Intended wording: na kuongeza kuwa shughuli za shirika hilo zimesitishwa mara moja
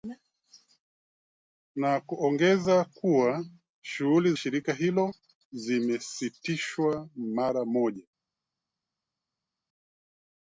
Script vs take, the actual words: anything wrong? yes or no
yes